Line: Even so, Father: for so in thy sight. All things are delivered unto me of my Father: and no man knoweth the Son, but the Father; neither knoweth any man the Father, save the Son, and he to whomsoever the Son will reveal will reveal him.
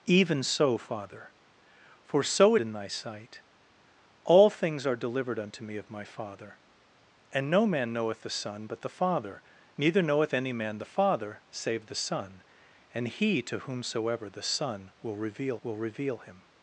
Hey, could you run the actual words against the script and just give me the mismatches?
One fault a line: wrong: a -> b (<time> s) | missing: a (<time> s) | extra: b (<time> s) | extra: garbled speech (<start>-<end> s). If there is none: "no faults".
no faults